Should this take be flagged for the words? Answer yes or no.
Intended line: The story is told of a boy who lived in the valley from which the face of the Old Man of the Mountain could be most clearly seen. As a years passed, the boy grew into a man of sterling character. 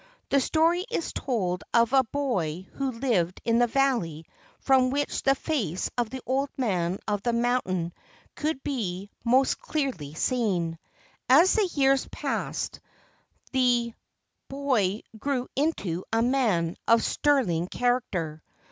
yes